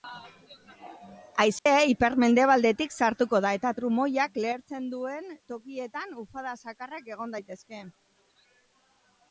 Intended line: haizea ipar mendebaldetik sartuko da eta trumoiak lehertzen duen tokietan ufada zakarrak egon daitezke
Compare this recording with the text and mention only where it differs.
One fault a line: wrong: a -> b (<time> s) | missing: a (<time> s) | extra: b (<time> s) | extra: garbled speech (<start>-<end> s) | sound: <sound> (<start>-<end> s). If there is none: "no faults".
sound: dropout (1.6-1.7 s)